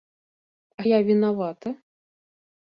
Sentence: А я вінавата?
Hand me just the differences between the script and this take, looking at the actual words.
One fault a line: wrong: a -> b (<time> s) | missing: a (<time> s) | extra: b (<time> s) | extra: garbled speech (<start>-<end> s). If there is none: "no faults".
no faults